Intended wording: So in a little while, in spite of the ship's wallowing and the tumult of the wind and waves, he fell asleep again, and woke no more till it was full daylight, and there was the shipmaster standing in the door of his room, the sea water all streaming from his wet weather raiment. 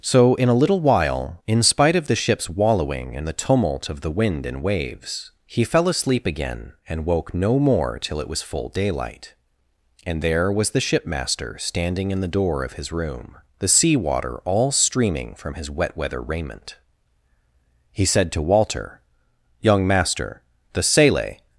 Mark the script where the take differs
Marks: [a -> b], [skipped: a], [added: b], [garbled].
So in a little while, in spite of the ship's wallowing and the tumult of the wind and waves, he fell asleep again, and woke no more till it was full daylight, and there was the shipmaster standing in the door of his room, the sea water all streaming from his wet weather raiment. [added: He said to Walter Young master the sele]